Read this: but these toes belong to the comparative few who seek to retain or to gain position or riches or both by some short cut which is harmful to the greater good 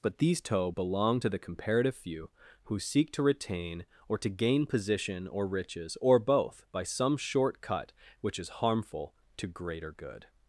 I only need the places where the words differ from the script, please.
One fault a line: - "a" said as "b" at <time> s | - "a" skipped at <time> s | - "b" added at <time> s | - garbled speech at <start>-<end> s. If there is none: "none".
- "toes" said as "toe" at 0.4 s
- "the" skipped at 9.5 s